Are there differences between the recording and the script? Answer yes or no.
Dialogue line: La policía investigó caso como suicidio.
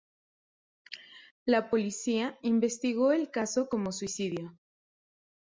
yes